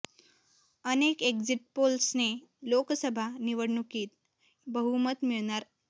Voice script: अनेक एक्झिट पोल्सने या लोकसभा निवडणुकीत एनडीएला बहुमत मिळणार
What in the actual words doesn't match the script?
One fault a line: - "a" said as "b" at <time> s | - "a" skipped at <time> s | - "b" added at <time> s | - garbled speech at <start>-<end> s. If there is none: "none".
- "या" skipped at 2.3 s
- "एनडीएला" skipped at 4.7 s